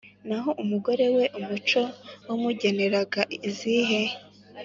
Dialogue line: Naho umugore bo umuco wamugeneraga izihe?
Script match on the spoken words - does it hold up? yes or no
no